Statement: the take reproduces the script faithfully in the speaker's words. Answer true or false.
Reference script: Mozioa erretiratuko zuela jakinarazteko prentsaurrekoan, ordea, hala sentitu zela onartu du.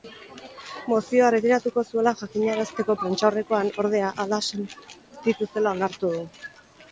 true